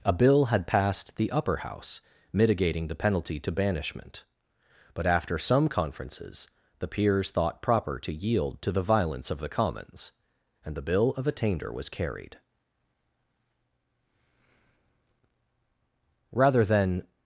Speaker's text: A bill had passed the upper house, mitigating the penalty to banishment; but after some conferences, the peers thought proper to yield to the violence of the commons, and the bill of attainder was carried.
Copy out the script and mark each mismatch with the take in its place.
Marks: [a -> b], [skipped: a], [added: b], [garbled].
A bill had passed the upper house, mitigating the penalty to banishment; but after some conferences, the peers thought proper to yield to the violence of the commons, and the bill of attainder was carried. [added: Rather than]